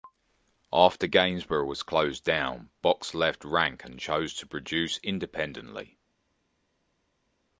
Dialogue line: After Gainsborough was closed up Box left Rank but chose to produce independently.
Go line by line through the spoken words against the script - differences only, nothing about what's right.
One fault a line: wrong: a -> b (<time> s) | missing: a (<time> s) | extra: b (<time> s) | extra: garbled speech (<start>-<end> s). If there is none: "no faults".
wrong: up -> down (2.2 s)
wrong: but -> and (3.8 s)